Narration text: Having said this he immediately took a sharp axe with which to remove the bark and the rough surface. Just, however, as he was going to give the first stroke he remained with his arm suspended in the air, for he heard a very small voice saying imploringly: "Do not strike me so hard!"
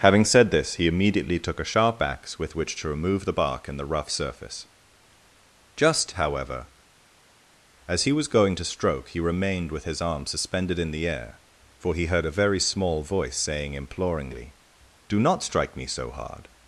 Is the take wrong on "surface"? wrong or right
right